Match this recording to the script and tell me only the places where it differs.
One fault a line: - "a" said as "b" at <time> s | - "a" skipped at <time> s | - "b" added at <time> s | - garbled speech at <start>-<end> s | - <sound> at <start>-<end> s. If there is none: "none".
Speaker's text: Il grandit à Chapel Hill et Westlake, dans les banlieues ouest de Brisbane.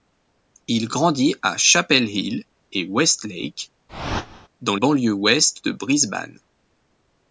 - whoosh at 3.9-4.5 s
- "les" skipped at 4.8 s